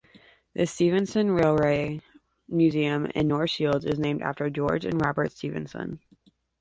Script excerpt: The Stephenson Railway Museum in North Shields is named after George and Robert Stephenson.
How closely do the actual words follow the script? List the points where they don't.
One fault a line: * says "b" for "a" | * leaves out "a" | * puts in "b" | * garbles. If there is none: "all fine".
all fine